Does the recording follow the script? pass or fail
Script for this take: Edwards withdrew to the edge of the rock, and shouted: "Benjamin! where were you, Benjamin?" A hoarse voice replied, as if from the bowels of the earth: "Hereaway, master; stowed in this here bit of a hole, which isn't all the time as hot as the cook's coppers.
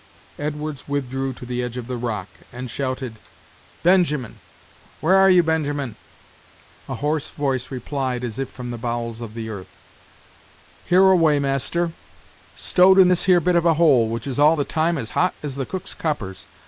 fail